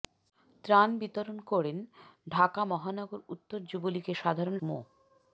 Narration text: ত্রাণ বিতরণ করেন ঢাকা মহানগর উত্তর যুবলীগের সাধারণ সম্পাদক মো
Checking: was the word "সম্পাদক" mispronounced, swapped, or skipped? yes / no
yes